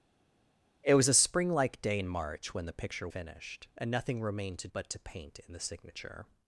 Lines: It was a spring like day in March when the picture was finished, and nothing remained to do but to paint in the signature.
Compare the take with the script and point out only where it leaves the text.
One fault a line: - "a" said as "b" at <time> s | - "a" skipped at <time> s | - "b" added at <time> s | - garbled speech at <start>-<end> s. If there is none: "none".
- "was" skipped at 3.1 s
- "do" skipped at 4.7 s